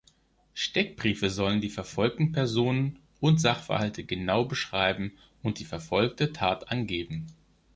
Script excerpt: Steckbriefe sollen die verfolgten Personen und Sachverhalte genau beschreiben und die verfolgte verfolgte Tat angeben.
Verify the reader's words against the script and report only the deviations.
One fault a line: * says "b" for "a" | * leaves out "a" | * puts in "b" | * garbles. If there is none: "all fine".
* leaves out "verfolgte"